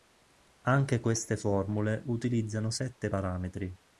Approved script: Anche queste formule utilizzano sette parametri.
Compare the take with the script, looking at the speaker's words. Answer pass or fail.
pass